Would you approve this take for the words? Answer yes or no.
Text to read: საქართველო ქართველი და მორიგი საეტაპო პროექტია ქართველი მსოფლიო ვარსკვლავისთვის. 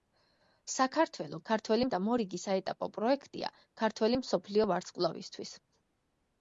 yes